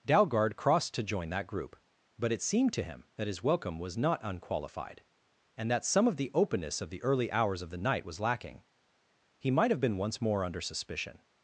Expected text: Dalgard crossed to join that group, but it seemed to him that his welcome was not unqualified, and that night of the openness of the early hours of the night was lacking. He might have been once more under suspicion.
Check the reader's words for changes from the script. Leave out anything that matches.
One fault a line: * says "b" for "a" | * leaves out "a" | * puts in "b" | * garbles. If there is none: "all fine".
* says "some" for "night"